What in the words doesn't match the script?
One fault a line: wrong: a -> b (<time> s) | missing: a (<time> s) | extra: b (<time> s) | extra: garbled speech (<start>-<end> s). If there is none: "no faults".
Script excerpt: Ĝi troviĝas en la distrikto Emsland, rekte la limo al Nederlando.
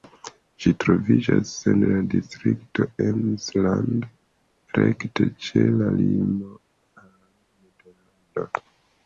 extra: ĉe (5.5 s)